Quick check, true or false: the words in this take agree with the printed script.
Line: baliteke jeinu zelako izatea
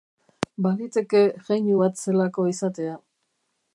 false